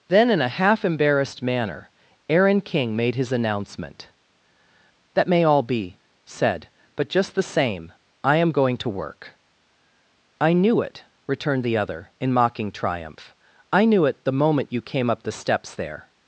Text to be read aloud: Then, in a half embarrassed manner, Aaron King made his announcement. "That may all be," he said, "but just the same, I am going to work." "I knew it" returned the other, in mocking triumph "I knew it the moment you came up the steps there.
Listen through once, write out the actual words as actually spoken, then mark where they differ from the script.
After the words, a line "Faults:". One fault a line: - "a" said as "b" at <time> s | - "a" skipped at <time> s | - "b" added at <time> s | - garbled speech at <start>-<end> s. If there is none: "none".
Then, in a half embarrassed manner, Aaron King made his announcement. "That may all be," said, "but just the same, I am going to work." "I knew it" returned the other, in mocking triumph "I knew it the moment you came up the steps there.
Faults:
- "he" skipped at 6.0 s